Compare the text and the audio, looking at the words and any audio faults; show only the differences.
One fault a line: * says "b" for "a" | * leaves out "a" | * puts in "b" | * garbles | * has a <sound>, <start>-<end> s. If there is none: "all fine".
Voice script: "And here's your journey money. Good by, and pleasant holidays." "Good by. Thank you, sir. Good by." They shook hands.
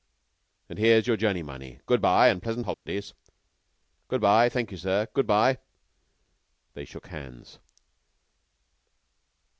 * has a dropout, 2.7-2.9 s